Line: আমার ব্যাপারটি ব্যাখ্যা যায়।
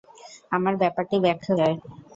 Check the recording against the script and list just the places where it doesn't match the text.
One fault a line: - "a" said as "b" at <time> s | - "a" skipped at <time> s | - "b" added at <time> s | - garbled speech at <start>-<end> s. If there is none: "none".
none